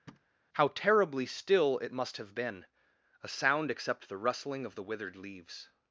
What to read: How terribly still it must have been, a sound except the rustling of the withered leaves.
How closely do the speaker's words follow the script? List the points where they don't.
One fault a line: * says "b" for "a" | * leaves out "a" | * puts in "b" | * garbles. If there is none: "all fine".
all fine